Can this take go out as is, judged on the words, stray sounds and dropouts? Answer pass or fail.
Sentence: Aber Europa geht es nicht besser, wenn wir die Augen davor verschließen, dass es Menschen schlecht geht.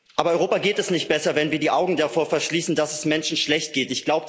pass